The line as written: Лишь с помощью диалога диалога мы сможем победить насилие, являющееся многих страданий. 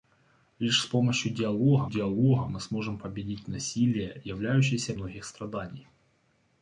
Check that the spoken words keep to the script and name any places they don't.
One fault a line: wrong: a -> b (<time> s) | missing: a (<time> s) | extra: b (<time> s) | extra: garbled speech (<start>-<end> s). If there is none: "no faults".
no faults